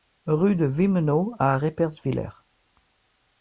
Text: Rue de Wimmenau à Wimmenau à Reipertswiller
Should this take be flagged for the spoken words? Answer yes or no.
yes